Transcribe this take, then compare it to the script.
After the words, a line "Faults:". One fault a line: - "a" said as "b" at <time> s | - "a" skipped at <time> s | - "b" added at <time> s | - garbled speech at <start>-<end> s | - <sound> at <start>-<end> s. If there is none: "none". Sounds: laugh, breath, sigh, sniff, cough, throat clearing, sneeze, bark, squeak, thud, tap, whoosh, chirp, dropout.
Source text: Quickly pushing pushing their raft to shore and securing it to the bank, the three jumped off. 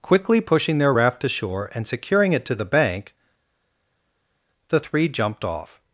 Quickly pushing their raft to shore and securing it to the bank, the three jumped off.
Faults:
- "pushing" skipped at 0.8 s